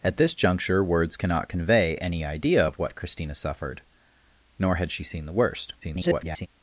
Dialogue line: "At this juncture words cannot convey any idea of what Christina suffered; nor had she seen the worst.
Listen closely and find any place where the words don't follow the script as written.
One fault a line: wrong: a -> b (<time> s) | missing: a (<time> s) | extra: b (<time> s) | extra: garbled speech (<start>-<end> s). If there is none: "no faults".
extra: garbled speech (5.8-6.5 s)